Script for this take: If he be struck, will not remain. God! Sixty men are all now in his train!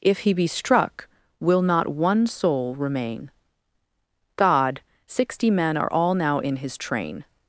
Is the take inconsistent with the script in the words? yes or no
yes